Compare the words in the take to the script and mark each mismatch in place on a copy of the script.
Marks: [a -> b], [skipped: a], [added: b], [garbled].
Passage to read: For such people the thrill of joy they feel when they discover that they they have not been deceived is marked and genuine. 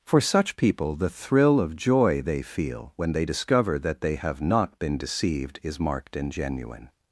For such people the thrill of joy they feel when they discover that they [skipped: they] have not been deceived is marked and genuine.